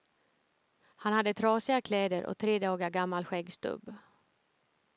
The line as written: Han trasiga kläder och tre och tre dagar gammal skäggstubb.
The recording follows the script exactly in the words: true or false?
false